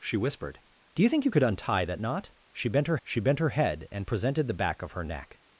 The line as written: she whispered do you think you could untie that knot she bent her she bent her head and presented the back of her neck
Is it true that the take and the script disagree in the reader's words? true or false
false